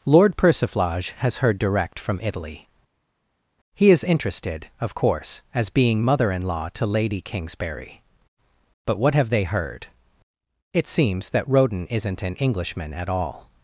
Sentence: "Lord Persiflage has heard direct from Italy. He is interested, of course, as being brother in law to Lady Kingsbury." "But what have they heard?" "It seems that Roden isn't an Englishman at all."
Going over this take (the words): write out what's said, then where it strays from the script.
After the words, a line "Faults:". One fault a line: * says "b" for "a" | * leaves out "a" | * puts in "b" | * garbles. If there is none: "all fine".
"Lord Persiflage has heard direct from Italy. He is interested, of course, as being mother in law to Lady Kingsbury." "But what have they heard?" "It seems that Roden isn't an Englishman at all."
Faults:
* says "mother" for "brother"